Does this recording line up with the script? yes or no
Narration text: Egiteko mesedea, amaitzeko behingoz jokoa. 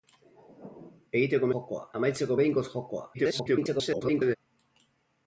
no